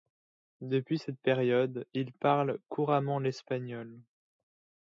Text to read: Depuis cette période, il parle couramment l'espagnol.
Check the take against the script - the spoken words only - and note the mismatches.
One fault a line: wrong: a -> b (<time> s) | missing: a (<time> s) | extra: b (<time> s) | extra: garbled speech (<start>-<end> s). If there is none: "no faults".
no faults